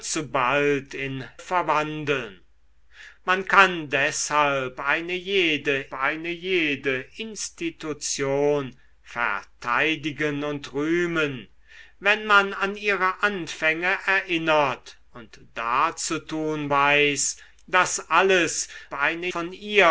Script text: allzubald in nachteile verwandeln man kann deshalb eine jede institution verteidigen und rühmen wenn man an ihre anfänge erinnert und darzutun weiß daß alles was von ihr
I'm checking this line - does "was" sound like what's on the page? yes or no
no